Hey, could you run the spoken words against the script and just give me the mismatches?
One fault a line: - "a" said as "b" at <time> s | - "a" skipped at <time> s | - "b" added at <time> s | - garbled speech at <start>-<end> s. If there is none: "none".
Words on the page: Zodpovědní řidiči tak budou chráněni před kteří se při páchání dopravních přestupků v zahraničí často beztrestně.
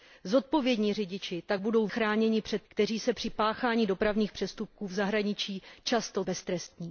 none